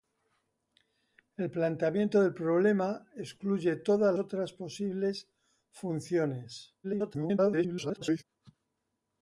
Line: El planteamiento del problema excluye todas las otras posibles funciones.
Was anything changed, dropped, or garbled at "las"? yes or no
yes